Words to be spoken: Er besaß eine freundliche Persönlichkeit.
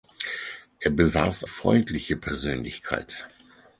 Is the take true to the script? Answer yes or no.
no